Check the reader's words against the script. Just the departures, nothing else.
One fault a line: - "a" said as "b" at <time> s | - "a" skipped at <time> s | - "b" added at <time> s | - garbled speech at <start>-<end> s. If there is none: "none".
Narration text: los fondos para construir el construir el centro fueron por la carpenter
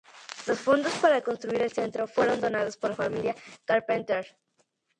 - "construir el" skipped at 1.7 s
- "donados" added at 2.4 s
- "familia" added at 2.9 s